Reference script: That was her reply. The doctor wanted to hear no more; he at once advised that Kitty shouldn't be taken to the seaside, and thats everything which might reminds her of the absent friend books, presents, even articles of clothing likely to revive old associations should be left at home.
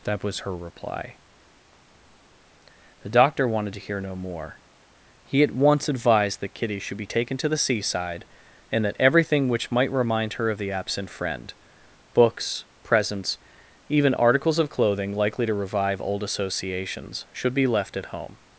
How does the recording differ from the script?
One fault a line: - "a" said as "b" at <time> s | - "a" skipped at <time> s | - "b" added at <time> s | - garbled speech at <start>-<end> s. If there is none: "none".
- "shouldn't" said as "should" at 6.8 s
- "thats" said as "that" at 8.8 s
- "reminds" said as "remind" at 9.9 s